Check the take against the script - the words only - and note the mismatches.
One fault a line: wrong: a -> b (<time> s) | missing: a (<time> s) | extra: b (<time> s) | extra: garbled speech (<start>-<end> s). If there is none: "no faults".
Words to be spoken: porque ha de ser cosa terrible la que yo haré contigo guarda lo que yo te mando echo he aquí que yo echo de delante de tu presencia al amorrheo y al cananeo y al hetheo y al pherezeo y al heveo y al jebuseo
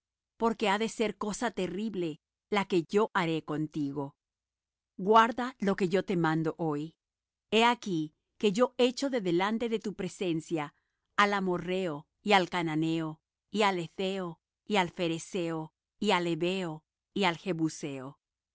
wrong: echo -> hoy (6.6 s)